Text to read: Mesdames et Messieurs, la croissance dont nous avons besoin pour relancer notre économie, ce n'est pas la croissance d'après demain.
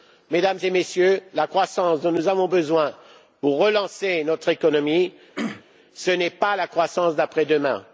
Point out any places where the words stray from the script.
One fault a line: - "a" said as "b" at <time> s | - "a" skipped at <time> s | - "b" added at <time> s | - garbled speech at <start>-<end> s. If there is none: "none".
none